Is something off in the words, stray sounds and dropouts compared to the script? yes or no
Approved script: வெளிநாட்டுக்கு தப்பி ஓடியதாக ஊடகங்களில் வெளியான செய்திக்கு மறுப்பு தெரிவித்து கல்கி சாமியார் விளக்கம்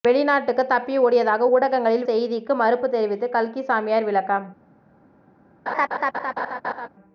yes